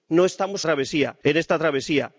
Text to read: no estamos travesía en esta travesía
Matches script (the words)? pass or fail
pass